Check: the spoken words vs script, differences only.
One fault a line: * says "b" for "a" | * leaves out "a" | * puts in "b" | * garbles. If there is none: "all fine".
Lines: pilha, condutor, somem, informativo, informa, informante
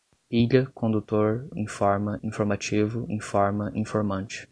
* says "informa" for "somem"